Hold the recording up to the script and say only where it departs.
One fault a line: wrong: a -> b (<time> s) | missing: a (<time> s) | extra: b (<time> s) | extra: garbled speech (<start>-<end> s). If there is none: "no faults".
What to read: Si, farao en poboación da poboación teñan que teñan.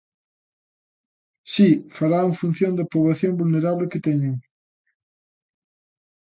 wrong: poboación -> función (2.4 s)
wrong: teñan -> vulnerable (3.4 s)